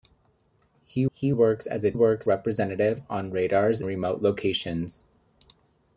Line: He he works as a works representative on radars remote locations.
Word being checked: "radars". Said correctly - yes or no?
yes